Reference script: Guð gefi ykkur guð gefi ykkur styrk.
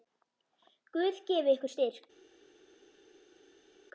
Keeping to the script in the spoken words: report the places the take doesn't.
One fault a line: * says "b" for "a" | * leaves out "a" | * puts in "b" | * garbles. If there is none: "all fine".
* leaves out "guð gefi ykkur"